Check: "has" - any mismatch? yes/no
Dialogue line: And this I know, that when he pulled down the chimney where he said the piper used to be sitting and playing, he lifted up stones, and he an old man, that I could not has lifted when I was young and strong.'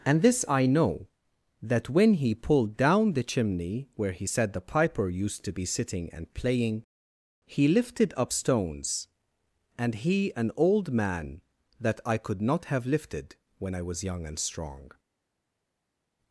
yes